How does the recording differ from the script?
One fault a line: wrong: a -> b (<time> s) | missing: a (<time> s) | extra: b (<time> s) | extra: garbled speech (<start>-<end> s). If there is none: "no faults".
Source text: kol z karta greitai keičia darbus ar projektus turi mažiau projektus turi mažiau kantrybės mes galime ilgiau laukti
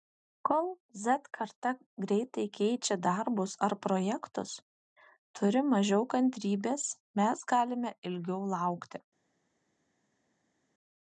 missing: projektus turi mažiau (6.1 s)